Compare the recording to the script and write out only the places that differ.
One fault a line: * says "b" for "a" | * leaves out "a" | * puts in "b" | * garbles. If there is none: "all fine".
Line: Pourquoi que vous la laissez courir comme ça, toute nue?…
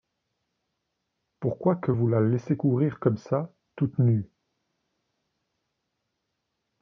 all fine